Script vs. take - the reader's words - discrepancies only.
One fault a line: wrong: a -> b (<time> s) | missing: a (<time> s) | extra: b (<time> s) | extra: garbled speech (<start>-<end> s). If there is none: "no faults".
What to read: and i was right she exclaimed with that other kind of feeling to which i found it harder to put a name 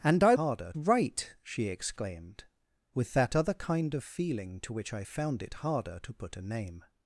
wrong: was -> harder (0.3 s)